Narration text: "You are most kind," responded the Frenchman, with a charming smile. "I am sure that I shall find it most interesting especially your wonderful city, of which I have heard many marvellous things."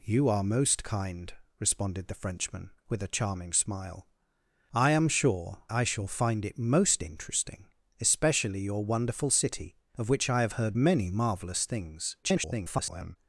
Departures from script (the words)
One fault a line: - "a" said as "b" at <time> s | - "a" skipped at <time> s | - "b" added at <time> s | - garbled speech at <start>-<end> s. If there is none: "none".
- "that" skipped at 5.7 s
- garbled speech at 12.2-13.2 s